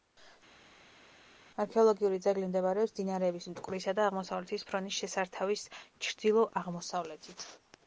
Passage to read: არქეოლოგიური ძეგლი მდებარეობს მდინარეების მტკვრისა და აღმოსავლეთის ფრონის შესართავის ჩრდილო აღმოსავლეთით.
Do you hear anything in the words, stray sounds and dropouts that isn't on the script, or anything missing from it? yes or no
no